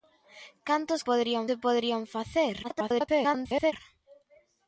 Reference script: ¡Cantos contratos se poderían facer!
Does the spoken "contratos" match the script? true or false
false